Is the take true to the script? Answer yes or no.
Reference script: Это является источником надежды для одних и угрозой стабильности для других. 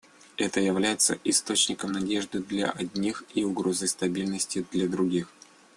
yes